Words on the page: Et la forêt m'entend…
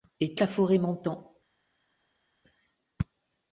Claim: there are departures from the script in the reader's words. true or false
false